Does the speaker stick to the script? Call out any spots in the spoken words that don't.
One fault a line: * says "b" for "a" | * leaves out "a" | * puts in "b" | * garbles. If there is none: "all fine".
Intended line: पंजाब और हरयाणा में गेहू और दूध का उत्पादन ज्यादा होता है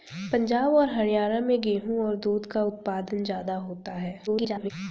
* garbles